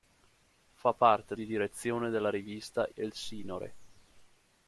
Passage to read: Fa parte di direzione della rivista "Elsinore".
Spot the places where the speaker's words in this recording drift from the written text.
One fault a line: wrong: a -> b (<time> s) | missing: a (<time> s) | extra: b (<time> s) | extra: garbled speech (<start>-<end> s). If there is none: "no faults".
no faults